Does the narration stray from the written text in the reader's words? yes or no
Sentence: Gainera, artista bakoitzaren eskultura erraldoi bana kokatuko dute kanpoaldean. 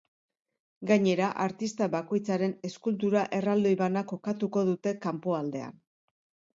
no